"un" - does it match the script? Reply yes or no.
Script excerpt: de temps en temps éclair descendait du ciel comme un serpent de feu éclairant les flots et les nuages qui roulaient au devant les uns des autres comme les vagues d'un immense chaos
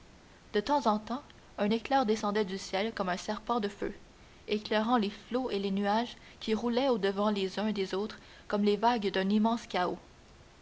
yes